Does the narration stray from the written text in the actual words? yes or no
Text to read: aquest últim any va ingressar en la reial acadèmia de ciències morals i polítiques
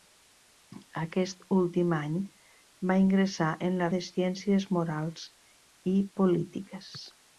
yes